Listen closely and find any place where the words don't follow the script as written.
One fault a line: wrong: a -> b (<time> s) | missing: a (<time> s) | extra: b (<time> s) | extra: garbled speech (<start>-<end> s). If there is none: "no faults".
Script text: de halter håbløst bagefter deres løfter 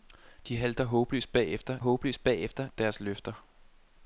extra: håbløst bagefter (1.8 s)